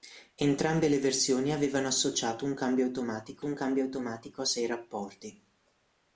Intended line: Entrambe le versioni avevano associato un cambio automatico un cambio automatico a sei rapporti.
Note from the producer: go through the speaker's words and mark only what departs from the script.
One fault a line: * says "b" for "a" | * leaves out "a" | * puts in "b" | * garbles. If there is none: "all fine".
all fine